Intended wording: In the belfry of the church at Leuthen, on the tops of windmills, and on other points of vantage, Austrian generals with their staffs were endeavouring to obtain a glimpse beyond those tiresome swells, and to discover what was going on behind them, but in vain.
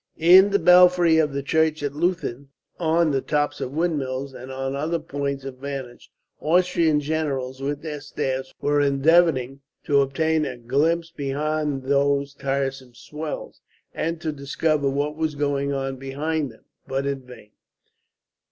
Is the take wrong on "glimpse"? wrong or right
right